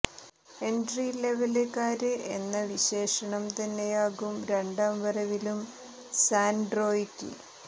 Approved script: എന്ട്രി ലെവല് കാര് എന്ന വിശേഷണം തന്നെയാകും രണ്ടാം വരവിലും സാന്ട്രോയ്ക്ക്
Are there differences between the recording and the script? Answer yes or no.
no